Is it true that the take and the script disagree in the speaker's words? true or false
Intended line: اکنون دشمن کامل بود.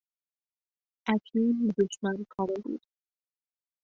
false